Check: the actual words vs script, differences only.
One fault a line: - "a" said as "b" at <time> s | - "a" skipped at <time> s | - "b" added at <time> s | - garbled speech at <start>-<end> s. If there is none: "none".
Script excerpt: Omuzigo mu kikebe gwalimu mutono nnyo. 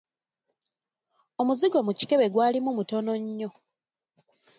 none